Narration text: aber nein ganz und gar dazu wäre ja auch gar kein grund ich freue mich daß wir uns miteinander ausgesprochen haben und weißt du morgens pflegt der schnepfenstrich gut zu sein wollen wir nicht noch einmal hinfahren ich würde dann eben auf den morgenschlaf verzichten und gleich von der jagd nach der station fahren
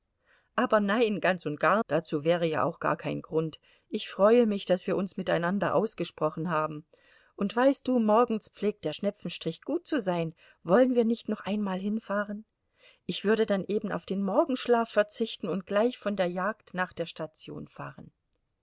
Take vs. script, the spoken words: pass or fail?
pass